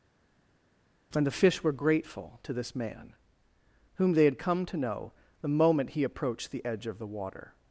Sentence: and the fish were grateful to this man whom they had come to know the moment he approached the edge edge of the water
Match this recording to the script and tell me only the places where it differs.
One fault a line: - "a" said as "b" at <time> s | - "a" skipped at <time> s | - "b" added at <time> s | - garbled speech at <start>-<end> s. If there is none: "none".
- "edge" skipped at 6.9 s